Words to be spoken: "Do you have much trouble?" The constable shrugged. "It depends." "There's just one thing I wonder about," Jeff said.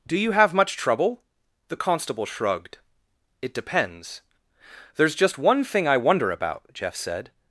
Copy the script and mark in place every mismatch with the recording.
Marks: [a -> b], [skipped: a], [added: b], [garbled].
"Do you have much trouble?" The constable shrugged. "It depends." "There's just one thing I wonder about," Jeff said.